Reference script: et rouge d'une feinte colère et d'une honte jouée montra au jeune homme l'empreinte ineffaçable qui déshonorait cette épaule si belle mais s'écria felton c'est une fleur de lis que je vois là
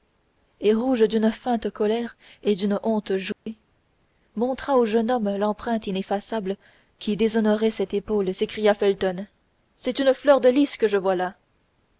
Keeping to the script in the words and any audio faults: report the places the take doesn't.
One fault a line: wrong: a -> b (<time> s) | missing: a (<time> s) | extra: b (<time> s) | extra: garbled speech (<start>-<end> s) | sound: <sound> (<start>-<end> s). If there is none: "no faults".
sound: dropout (3.3-3.5 s)
missing: si belle mais (8.3 s)